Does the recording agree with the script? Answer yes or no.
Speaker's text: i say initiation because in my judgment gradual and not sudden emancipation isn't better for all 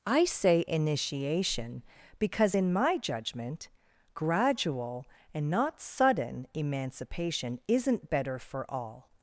yes